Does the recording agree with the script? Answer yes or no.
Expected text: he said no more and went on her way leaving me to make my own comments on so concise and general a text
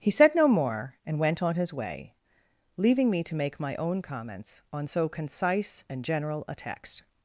no